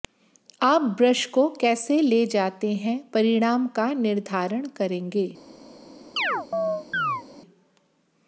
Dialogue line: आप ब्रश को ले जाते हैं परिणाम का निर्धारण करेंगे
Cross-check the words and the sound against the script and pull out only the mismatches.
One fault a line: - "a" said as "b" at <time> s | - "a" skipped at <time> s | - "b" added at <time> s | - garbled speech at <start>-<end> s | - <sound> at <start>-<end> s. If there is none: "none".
- "कैसे" added at 1.6 s
- chirp at 6.2-7.2 s